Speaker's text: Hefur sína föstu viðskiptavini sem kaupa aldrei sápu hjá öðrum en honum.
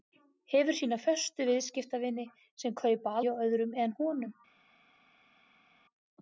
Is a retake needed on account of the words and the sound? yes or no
yes